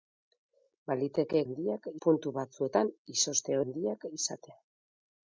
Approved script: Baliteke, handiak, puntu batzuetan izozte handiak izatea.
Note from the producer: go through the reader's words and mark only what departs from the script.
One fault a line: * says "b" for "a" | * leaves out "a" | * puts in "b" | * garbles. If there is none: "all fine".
all fine